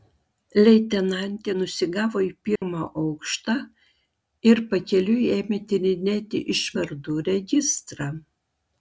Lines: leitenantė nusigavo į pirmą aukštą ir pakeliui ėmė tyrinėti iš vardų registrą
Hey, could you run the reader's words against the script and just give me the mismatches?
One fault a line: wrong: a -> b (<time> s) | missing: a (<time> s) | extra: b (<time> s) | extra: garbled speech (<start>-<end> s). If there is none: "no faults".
no faults